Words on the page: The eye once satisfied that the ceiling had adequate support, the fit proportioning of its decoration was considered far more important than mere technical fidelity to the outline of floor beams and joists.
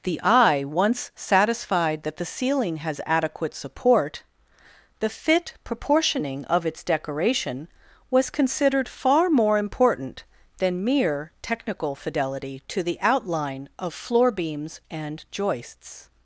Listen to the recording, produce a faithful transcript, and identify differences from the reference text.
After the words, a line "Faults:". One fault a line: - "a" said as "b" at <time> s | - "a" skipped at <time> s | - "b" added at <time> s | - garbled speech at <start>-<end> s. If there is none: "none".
The eye once satisfied that the ceiling has adequate support, the fit proportioning of its decoration was considered far more important than mere technical fidelity to the outline of floor beams and joists.
Faults:
- "had" said as "has" at 2.8 s